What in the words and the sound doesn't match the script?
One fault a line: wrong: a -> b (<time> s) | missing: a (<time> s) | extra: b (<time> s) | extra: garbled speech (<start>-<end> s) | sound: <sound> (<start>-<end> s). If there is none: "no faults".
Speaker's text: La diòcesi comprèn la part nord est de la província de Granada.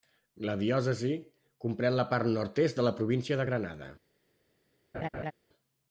sound: laugh (4.9-5.3 s)